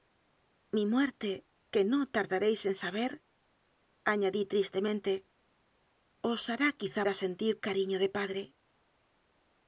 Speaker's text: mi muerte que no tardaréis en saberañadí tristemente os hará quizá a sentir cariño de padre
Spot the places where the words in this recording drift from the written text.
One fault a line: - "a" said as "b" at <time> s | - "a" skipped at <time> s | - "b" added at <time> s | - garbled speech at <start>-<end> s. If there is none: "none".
none